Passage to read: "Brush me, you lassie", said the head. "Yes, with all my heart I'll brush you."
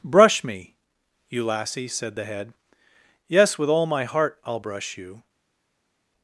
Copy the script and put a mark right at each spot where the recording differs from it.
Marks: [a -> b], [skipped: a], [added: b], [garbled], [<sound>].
"Brush me, you lassie", said the head. "Yes, with all my heart I'll brush you."